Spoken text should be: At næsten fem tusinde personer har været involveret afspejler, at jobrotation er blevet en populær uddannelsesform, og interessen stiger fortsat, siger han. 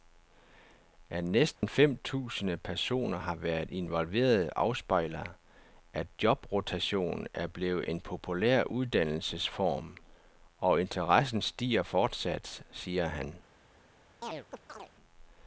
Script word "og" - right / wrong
right